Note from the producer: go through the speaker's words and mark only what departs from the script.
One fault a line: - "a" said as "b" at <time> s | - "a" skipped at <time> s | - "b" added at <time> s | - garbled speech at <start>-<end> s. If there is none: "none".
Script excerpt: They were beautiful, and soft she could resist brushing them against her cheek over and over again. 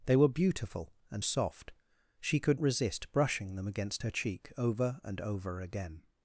none